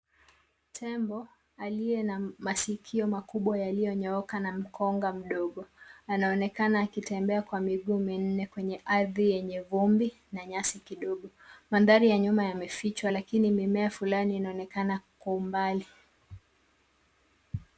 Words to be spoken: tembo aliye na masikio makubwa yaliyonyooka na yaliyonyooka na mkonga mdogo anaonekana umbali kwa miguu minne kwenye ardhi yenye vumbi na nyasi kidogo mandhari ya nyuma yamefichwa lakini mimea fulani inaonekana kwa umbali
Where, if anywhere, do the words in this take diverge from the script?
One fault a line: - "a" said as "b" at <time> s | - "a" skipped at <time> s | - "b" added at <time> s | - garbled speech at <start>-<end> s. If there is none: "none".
- "yaliyonyooka na" skipped at 4.5 s
- "umbali" said as "akitembea" at 6.8 s